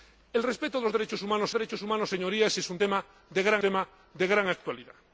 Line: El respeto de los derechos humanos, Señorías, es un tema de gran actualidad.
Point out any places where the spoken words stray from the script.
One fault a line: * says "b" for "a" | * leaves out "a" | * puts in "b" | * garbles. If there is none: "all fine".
* puts in "derechos humanos"
* puts in "tema de gran"